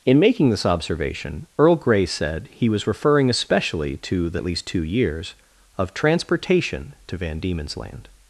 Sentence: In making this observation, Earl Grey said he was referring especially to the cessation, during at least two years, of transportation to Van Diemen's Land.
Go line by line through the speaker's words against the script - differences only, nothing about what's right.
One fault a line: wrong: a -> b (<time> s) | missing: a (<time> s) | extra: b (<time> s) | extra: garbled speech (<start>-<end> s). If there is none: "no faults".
missing: cessation during (4.4 s)